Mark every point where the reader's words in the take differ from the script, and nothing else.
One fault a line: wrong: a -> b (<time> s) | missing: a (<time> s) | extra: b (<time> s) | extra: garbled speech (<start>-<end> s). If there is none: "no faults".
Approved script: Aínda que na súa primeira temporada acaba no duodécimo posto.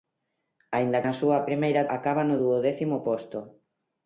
missing: que (1.0 s)
missing: temporada (1.8 s)